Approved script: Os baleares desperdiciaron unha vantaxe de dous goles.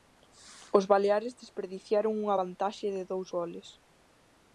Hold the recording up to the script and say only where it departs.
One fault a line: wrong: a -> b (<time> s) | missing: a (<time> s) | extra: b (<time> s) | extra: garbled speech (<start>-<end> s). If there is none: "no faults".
no faults